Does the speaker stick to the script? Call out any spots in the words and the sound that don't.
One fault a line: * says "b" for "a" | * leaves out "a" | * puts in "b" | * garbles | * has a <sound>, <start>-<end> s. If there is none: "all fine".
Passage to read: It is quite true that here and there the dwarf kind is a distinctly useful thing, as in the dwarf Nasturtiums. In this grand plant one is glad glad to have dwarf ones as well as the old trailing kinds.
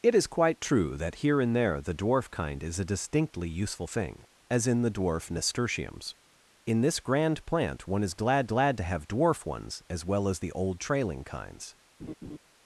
* has a laugh, 12.0-12.4 s